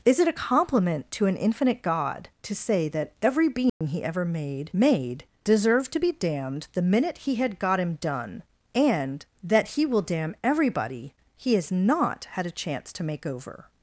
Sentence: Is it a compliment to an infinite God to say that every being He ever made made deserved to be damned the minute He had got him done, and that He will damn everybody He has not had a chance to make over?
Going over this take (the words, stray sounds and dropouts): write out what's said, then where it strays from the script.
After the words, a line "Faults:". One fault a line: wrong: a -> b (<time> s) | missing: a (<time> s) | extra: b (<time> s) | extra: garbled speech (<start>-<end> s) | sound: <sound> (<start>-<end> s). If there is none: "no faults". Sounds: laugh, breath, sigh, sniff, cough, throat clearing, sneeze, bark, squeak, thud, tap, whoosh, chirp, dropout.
Is it a compliment to an infinite God to say that every being He ever made made deserved to be damned the minute He had got him done, and that He will damn everybody He has not had a chance to make over?
Faults:
sound: dropout (3.7-3.8 s)